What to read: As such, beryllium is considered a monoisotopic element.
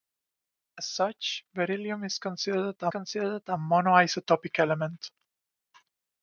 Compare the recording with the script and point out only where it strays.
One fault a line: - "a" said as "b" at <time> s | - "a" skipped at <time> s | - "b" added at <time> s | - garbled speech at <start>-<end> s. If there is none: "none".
- "considered a" added at 2.9 s